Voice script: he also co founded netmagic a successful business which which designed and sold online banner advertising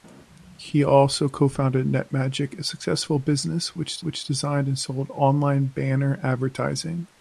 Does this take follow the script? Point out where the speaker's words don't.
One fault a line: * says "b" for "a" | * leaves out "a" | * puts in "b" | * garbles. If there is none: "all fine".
all fine